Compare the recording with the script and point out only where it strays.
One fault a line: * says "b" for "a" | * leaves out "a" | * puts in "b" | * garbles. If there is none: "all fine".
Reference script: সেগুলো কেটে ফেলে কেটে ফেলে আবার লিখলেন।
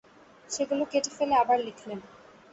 * leaves out "কেটে ফেলে"